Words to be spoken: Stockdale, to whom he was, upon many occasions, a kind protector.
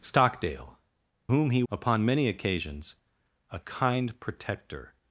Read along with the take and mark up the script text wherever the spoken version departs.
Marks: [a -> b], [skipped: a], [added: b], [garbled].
Stockdale, [skipped: to] whom he [skipped: was,] upon many occasions, a kind protector.